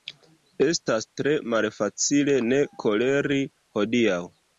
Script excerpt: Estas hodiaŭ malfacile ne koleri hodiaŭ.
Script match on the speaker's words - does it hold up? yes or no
no